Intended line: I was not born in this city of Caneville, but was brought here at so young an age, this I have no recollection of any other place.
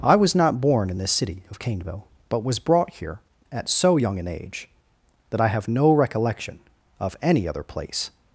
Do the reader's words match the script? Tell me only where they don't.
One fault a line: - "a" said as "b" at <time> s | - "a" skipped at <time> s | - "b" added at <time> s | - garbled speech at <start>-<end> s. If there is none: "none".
- "this" said as "that" at 5.3 s